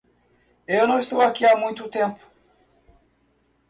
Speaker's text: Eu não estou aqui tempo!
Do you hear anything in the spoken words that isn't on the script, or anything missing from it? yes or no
yes